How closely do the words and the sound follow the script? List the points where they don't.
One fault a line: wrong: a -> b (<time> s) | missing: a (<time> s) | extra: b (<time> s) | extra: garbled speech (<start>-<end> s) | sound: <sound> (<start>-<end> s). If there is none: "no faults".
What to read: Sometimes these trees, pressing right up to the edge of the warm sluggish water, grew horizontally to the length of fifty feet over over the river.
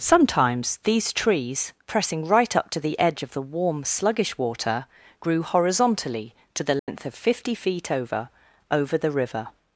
sound: dropout (6.8-6.9 s)